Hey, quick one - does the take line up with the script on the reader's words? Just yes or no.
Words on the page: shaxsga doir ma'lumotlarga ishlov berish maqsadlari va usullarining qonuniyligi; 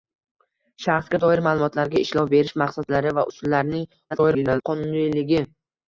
no